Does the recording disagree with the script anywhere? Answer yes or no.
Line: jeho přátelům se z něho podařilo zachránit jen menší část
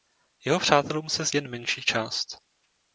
yes